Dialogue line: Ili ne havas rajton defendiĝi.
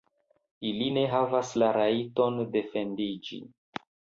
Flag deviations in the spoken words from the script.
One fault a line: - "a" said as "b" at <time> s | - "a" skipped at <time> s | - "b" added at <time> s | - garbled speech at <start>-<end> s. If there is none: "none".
- "la" added at 1.6 s